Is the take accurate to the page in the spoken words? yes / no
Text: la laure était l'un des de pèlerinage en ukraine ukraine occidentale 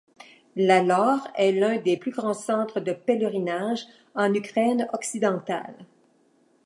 no